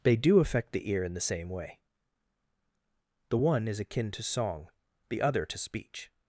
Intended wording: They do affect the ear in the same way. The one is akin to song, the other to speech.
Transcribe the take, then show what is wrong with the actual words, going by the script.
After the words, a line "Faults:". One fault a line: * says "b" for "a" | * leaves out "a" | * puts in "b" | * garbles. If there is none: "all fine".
They do affect the ear in the same way. The one is akin to song, the other to speech.
Faults:
all fine